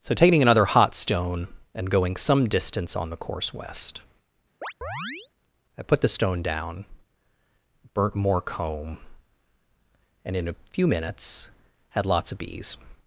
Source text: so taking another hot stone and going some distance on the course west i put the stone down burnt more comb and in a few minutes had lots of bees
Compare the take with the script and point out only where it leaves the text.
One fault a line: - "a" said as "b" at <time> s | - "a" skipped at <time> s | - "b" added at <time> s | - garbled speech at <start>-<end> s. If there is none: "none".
none